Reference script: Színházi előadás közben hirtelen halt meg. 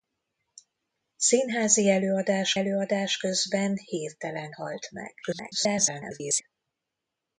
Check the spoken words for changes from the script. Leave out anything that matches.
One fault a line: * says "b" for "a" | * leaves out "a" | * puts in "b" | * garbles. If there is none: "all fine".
* puts in "előadás"
* garbles